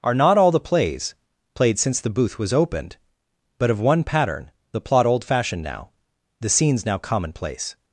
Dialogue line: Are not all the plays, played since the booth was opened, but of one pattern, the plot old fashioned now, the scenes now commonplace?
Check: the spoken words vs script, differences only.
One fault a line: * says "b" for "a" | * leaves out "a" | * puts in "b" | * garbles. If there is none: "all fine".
all fine